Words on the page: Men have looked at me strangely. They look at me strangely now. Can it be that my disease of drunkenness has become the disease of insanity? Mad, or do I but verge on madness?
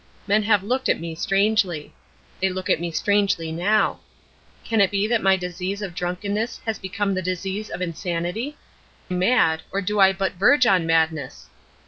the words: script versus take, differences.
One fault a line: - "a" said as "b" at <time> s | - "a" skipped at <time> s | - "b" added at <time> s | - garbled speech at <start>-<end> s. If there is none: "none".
none